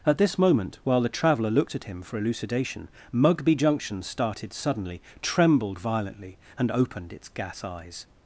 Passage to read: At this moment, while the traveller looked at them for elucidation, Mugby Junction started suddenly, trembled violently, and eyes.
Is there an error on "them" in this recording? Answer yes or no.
yes